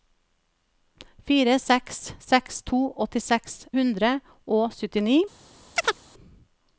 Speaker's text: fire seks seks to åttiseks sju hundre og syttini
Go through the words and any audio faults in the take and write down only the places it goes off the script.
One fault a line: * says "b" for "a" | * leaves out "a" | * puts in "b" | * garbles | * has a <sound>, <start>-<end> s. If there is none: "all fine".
* leaves out "sju"
* has a chirp, 5.8-6.0 s